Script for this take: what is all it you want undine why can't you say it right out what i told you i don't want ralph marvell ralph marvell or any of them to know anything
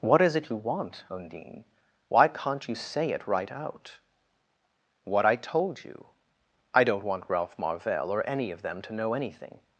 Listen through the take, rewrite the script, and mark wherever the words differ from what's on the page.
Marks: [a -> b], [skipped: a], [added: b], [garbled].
what is [skipped: all] it you want undine why can't you say it right out what i told you i don't want ralph marvell [skipped: ralph marvell] or any of them to know anything